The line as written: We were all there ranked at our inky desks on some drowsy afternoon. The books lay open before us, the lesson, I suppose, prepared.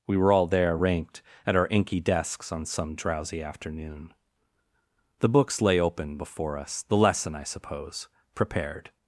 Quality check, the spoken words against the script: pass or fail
pass